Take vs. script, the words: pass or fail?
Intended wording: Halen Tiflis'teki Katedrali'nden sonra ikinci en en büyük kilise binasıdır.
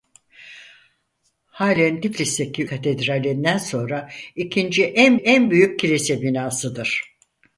pass